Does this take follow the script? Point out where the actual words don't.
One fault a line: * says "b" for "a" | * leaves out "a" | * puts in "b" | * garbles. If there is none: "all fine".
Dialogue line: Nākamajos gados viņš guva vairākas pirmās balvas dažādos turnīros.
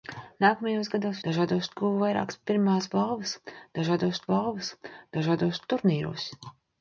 * says "dažādos" for "viņš"
* puts in "balvas dažādos"